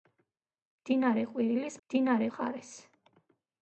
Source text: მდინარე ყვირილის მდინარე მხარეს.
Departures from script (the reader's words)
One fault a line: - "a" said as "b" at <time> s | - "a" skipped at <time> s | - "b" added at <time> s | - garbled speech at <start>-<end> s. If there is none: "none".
none